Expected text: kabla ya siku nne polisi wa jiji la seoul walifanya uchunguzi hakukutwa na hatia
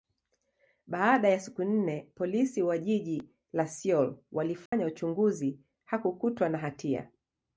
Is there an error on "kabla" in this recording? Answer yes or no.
yes